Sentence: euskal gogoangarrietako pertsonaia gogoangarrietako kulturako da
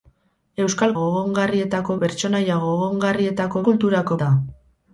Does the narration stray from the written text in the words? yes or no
no